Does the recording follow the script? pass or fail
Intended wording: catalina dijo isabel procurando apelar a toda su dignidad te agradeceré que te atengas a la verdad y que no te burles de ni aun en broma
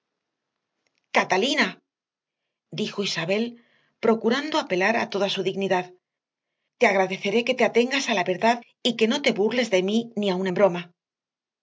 fail